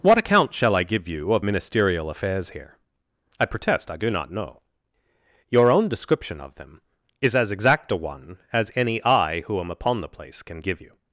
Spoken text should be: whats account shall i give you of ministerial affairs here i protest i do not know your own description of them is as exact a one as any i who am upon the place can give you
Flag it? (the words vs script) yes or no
yes